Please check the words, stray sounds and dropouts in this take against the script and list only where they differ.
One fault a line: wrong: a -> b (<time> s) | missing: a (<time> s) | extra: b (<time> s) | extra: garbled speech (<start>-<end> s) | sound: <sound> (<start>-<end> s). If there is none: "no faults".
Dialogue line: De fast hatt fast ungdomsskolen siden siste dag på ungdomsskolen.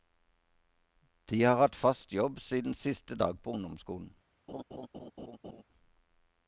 wrong: fast -> har (1.4 s)
wrong: ungdomsskolen -> jobb (2.1 s)
sound: laugh (4.5-5.6 s)